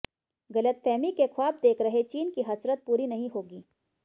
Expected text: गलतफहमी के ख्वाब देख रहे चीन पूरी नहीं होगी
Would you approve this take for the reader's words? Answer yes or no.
no